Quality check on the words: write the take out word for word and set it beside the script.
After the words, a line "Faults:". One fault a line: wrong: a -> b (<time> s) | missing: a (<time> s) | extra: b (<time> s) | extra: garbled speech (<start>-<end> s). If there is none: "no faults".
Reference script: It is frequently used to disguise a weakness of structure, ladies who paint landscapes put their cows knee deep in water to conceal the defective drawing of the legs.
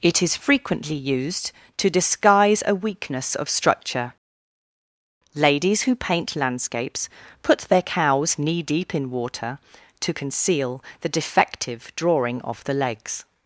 It is frequently used to disguise a weakness of structure, ladies who paint landscapes put their cows knee deep in water to conceal the defective drawing of the legs.
Faults:
no faults